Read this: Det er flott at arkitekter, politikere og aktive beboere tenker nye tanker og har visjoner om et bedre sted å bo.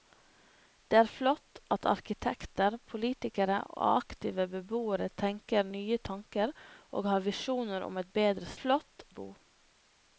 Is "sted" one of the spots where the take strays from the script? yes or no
yes